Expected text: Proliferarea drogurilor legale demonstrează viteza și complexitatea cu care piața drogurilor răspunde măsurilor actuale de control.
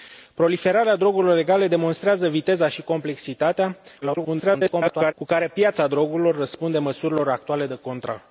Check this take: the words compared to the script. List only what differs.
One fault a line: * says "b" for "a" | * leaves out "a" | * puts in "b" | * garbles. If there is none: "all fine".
* garbles